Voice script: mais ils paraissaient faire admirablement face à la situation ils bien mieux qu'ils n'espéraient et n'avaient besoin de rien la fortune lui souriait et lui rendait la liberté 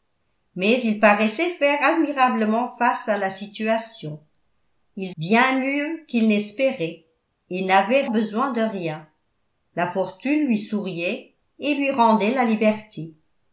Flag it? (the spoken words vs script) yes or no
no